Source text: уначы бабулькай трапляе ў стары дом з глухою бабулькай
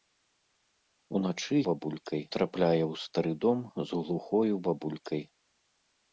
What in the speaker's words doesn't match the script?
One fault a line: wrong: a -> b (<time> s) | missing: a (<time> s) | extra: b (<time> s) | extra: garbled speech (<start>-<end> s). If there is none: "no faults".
no faults